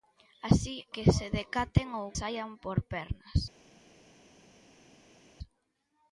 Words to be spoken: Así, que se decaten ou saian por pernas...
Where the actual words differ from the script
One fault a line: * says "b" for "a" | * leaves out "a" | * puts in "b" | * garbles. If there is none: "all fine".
all fine